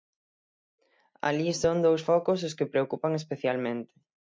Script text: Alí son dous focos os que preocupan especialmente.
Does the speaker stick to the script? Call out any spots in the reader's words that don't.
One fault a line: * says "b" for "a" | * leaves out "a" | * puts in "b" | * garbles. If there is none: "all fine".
all fine